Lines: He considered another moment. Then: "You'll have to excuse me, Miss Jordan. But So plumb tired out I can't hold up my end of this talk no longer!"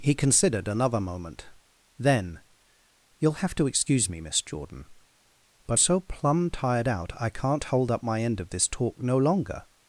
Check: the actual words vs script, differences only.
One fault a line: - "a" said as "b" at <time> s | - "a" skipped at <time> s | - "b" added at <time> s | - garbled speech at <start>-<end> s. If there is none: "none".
none